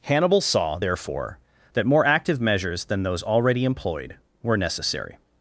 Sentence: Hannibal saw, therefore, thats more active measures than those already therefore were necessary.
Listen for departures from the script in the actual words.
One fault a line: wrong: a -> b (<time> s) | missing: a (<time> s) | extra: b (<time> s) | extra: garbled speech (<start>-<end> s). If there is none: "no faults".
wrong: thats -> that (1.7 s)
wrong: therefore -> employed (3.6 s)